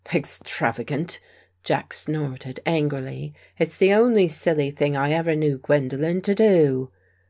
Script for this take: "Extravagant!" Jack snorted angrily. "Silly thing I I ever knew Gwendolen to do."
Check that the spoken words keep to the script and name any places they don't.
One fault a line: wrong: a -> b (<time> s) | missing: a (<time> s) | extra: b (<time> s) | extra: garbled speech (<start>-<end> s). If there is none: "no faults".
extra: It's the only (3.6 s)
missing: I (5.1 s)